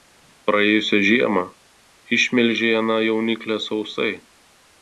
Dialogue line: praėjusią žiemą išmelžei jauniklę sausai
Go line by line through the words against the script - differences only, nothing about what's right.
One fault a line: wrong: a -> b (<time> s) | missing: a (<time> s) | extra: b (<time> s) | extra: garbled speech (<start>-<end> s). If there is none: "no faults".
extra: aną (2.8 s)